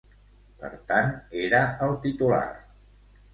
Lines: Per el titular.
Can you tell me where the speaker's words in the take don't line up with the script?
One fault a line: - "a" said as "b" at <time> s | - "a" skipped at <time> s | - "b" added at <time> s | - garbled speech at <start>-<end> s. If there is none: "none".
- "tant era" added at 0.9 s